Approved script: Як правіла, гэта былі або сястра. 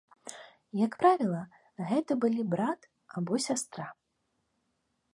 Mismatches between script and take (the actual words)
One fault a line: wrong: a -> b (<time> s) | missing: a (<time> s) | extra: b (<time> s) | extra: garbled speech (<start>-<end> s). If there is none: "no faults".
extra: брат (2.5 s)